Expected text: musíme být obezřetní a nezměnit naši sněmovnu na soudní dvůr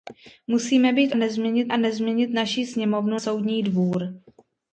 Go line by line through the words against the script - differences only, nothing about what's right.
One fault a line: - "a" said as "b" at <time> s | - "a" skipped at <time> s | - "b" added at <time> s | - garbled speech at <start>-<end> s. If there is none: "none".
- "obezřetní" said as "nezměnit" at 1.1 s
- "na" skipped at 3.2 s